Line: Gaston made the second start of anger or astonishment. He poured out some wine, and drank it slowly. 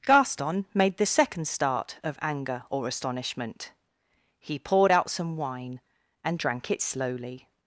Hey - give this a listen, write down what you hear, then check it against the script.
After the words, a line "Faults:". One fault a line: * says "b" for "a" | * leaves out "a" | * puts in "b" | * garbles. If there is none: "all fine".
Gaston made the second start of anger or astonishment. He poured out some wine, and drank it slowly.
Faults:
all fine